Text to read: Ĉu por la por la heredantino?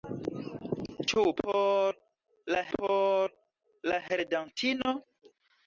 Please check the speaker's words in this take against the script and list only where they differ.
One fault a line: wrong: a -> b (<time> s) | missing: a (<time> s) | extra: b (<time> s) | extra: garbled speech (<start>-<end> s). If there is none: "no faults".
no faults